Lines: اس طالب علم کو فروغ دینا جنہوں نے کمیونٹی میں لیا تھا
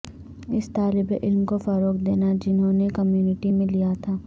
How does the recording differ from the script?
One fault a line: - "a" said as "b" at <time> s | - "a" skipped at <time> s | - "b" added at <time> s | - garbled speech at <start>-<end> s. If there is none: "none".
none